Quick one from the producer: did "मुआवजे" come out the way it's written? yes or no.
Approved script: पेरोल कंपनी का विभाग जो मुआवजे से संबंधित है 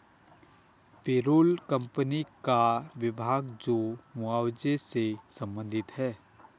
yes